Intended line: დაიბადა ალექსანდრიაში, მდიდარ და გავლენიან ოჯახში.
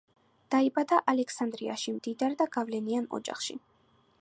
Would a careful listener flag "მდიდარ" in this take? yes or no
no